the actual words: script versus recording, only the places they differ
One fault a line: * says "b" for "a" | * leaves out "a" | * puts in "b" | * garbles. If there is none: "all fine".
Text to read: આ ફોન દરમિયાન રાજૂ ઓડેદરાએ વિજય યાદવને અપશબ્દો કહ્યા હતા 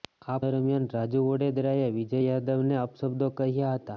* leaves out "ફોન"